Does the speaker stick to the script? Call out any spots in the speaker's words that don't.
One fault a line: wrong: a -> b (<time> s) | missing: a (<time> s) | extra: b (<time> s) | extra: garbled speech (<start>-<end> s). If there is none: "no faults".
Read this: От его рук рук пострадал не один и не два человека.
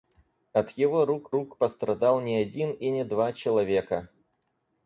no faults